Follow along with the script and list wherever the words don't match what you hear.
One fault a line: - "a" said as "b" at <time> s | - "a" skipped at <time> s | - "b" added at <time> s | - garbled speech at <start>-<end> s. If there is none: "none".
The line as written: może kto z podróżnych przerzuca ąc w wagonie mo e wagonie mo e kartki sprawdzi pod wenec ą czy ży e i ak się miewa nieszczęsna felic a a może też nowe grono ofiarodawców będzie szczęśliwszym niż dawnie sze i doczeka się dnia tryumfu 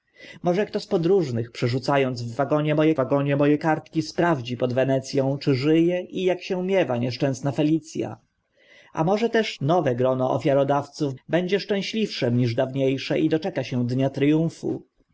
none